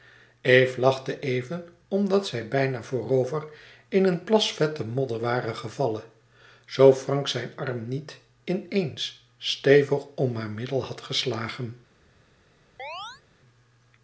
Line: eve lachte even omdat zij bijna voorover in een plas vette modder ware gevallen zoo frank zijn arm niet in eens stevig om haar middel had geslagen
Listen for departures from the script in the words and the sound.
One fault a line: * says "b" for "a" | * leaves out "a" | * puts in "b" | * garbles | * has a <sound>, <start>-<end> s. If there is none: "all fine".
* has a chirp, 12.8-13.2 s